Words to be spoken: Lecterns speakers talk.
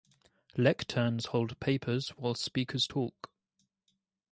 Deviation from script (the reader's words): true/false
true